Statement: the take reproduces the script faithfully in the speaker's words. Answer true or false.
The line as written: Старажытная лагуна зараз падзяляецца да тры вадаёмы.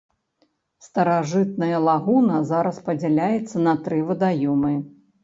false